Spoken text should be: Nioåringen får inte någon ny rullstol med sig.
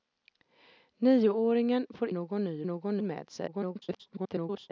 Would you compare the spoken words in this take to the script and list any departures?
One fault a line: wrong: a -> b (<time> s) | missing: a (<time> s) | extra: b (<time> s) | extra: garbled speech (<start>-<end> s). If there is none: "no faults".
missing: inte (2.1 s)
wrong: rullstol -> någon (2.7 s)
extra: garbled speech (3.5-4.7 s)